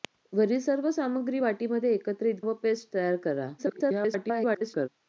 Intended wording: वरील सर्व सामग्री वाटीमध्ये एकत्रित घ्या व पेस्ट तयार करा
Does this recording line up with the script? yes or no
no